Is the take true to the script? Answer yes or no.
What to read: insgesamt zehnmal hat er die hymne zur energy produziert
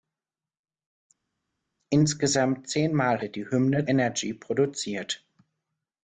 no